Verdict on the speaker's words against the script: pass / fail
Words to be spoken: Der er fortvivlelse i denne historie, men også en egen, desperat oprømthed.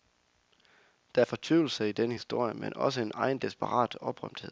pass